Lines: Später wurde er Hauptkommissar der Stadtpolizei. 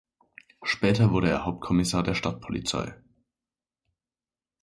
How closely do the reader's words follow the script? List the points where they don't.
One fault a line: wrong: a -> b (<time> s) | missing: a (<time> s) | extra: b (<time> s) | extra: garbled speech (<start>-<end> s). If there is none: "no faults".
no faults